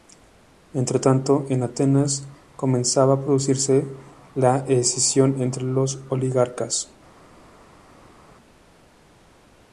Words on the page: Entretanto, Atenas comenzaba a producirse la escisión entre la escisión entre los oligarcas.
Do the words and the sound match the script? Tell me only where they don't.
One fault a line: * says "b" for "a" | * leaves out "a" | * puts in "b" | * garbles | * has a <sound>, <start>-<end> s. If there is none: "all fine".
* puts in "en"
* leaves out "la escisión entre"